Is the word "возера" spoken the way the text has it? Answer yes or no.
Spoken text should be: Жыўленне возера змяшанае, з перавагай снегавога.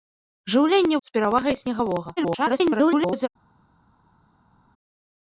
no